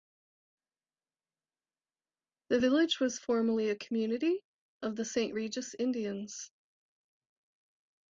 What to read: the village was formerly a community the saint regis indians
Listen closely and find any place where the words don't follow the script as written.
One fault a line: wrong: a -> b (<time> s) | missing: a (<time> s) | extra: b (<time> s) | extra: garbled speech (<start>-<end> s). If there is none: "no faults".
extra: of (4.8 s)